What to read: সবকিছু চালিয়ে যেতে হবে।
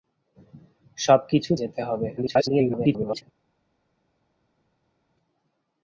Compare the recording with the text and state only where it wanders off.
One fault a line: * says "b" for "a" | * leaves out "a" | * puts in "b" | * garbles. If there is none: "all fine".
* leaves out "চালিয়ে"
* garbles